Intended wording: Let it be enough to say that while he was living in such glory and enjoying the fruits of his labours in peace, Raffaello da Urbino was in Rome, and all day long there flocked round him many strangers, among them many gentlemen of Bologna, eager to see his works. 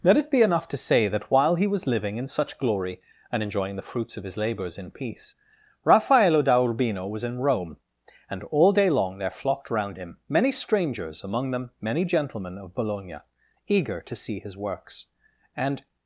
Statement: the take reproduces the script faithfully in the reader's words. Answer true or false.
false